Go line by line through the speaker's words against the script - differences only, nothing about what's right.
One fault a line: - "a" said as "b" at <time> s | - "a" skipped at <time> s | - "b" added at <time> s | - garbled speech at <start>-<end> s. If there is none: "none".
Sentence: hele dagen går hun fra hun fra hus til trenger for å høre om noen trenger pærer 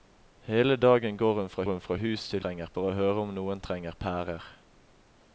none